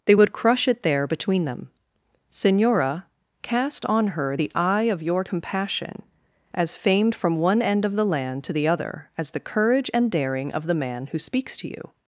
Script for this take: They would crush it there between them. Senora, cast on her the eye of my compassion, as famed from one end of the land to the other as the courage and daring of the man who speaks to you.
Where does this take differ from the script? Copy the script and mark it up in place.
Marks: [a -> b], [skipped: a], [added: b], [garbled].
They would crush it there between them. Senora, cast on her the eye of [my -> your] compassion, as famed from one end of the land to the other as the courage and daring of the man who speaks to you.